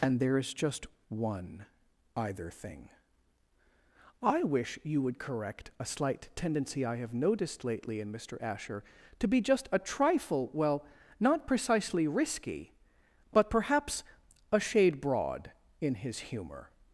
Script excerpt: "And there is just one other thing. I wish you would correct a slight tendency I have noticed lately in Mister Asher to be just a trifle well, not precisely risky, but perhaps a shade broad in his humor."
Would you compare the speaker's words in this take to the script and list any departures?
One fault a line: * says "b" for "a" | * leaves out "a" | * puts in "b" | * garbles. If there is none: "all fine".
* says "either" for "other"